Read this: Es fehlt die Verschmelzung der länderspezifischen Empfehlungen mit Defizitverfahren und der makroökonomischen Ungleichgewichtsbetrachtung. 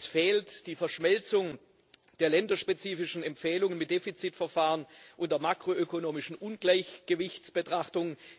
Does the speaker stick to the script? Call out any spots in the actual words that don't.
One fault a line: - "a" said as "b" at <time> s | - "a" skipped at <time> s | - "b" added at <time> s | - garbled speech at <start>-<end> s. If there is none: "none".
none